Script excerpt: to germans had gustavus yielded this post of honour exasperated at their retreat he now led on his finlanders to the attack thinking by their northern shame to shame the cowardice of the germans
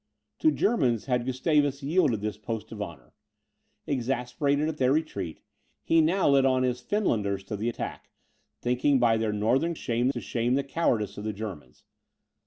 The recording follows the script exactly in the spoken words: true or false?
true